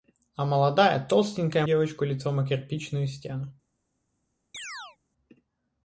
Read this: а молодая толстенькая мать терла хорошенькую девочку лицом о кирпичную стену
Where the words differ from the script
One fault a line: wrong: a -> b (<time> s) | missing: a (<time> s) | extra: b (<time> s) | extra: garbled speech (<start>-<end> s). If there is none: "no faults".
missing: мать терла хорошенькую (1.7 s)